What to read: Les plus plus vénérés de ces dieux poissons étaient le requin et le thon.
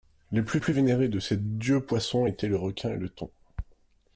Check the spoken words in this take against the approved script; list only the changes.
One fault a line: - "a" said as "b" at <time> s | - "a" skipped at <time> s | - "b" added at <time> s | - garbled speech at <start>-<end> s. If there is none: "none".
none